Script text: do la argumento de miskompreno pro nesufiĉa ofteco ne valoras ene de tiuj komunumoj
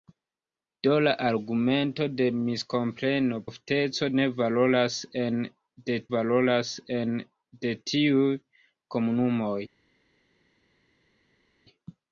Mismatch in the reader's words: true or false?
true